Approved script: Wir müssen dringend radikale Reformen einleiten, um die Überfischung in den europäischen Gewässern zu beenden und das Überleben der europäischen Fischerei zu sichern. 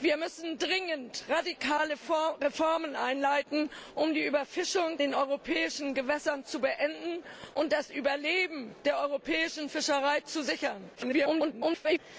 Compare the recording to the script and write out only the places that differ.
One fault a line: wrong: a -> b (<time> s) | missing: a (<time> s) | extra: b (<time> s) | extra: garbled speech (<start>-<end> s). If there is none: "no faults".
missing: in (5.0 s)
extra: garbled speech (10.9-12.0 s)